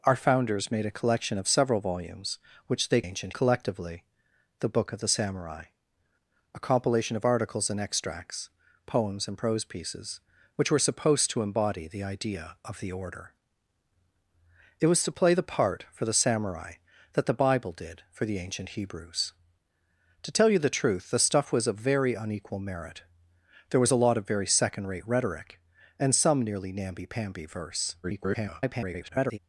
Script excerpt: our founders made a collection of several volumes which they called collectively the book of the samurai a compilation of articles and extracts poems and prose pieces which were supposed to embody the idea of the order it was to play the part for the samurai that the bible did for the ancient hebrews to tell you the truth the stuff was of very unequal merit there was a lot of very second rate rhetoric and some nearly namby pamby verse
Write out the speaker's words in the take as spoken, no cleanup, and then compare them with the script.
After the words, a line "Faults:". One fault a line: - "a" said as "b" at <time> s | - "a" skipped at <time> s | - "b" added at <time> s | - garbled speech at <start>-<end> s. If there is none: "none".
our founders made a collection of several volumes which they ancient collectively the book of the samurai a compilation of articles and extracts poems and prose pieces which were supposed to embody the idea of the order it was to play the part for the samurai that the bible did for the ancient hebrews to tell you the truth the stuff was of very unequal merit there was a lot of very second rate rhetoric and some nearly namby pamby verse [garbled]
Faults:
- "called" said as "ancient" at 3.0 s
- garbled speech at 28.0-29.4 s